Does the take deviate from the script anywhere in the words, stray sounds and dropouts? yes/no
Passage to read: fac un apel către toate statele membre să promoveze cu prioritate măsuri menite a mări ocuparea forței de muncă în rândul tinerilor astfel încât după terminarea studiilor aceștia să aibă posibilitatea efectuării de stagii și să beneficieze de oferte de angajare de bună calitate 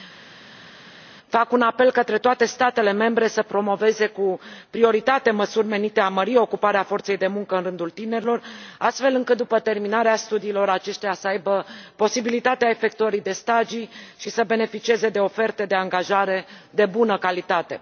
no